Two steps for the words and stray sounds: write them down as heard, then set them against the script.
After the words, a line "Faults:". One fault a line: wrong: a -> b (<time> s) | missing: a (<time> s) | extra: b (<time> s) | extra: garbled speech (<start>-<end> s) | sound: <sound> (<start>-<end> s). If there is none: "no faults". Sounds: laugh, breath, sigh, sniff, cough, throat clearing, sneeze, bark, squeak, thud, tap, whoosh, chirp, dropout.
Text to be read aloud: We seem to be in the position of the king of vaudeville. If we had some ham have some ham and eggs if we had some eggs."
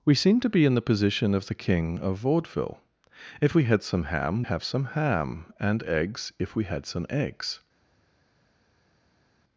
We seem to be in the position of the king of vaudeville. If we had some ham have some ham and eggs if we had some eggs."
Faults:
no faults